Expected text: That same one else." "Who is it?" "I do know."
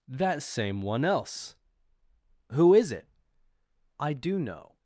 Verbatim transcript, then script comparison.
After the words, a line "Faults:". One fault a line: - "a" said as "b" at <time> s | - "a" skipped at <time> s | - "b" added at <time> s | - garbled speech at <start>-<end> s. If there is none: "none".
That same one else." "Who is it?" "I do know."
Faults:
none